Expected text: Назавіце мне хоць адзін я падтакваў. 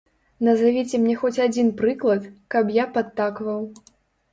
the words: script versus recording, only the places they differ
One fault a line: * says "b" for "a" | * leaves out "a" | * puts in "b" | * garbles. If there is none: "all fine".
* puts in "прыклад каб"